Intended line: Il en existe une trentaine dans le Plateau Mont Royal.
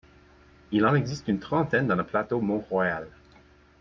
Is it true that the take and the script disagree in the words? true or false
false